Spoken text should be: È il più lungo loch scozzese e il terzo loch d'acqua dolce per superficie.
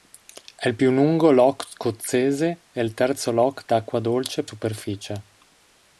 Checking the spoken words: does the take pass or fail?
fail